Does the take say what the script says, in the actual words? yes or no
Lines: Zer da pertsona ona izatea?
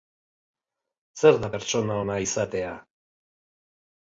yes